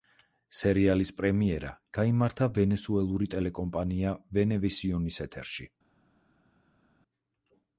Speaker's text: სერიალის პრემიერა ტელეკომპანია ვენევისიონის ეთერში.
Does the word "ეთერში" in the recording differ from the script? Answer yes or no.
no